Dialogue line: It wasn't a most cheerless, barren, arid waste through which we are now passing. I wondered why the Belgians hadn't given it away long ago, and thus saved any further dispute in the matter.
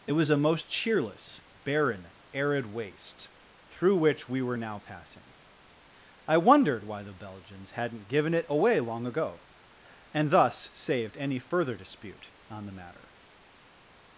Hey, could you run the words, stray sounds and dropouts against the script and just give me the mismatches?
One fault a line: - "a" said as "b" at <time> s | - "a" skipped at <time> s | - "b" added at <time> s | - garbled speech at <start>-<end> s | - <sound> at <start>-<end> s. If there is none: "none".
- "wasn't" said as "was" at 0.1 s
- "are" said as "were" at 4.4 s
- "in" said as "on" at 12.5 s